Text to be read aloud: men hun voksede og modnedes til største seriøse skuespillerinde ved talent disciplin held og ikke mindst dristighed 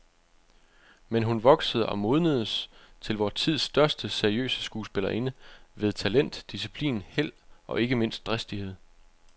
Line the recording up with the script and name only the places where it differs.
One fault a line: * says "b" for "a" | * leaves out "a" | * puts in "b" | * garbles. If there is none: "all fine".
* puts in "vor tids"